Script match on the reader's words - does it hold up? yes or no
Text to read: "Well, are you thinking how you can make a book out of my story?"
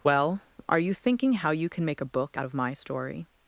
yes